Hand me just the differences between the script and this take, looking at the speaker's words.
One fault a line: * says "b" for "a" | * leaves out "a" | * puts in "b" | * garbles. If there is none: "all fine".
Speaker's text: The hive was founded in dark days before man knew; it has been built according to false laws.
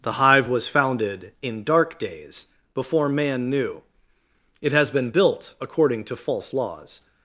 all fine